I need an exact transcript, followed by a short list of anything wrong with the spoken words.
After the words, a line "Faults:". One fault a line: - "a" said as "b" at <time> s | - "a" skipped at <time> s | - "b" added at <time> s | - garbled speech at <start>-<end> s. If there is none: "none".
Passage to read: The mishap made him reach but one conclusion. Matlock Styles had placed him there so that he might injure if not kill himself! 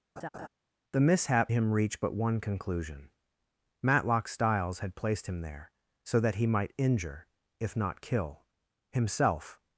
The mishap him reach but one conclusion. Matlock Styles had placed him there so that he might injure if not kill himself!
Faults:
- "made" skipped at 1.5 s